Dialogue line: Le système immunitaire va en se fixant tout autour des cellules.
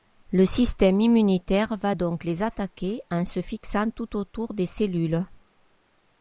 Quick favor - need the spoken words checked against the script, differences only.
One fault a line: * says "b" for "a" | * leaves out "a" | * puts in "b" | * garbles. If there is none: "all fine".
* puts in "donc les attaquer"